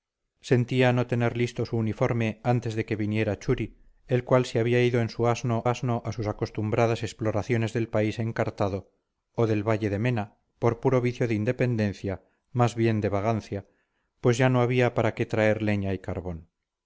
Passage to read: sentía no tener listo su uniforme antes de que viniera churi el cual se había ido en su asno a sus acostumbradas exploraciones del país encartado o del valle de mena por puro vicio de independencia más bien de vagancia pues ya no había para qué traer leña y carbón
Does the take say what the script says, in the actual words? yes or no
no